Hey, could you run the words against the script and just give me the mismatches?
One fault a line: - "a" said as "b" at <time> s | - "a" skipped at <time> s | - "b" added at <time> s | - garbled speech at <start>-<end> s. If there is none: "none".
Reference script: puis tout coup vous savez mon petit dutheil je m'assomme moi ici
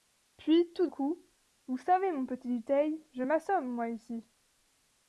none